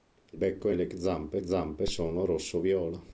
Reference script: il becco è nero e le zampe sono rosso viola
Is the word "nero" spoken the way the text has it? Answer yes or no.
no